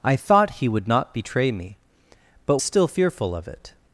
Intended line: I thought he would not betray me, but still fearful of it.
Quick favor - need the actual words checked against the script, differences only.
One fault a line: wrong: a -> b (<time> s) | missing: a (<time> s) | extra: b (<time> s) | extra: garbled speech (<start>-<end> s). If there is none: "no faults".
no faults